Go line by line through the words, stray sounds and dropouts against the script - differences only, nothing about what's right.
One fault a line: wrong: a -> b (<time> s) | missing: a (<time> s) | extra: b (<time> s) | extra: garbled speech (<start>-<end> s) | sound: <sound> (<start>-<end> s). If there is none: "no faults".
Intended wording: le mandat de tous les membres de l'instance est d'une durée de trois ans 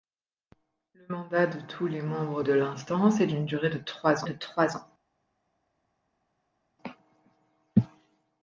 extra: de trois (4.2 s)